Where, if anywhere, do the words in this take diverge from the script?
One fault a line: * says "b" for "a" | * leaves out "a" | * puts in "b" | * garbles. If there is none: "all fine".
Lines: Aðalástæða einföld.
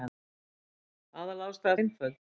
all fine